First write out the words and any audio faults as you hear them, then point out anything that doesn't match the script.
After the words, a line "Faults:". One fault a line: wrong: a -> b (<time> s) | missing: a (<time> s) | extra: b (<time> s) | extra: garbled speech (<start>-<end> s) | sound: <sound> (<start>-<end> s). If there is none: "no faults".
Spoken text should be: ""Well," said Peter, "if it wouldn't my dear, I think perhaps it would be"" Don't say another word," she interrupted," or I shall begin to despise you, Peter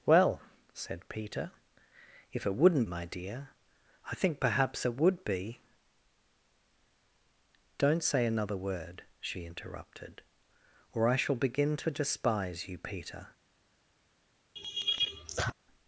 ""Well," said Peter, "if it wouldn't my dear, I think perhaps it would be"" Don't say another word," she interrupted," or I shall begin to despise you, Peter
Faults:
sound: laugh (14.6-15.5 s)